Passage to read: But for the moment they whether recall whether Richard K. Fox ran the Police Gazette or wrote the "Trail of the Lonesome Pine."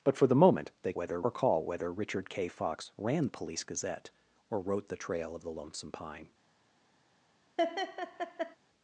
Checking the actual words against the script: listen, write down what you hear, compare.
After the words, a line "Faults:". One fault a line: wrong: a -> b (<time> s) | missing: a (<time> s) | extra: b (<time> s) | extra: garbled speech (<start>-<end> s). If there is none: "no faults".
But for the moment they whether recall whether Richard K. Fox ran the Police Gazette or wrote the "Trail of the Lonesome Pine."
Faults:
no faults